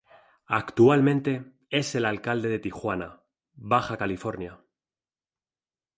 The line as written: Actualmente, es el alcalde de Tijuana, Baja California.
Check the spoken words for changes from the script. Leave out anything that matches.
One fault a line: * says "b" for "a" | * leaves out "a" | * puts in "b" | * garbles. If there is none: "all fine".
all fine